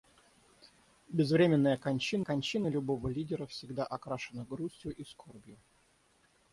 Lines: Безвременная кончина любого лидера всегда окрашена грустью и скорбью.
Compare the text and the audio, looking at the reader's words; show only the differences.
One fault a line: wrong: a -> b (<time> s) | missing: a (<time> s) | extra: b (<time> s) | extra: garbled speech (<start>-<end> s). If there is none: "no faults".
extra: кончина (2.2 s)